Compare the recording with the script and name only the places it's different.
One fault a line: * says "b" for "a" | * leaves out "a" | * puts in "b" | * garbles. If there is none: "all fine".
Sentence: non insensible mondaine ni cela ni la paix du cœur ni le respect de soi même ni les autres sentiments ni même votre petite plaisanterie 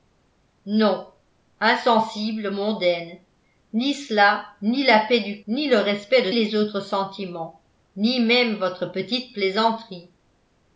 * leaves out "cœur"
* leaves out "soi même ni"